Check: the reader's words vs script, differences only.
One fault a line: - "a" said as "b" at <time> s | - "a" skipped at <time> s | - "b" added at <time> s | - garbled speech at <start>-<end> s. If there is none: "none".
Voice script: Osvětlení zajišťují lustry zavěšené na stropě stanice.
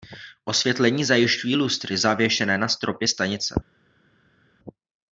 none